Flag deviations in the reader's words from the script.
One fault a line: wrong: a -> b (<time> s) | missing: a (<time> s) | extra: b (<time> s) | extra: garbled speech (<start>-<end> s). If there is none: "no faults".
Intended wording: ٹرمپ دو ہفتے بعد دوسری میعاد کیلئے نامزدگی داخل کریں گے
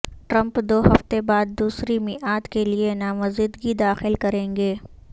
no faults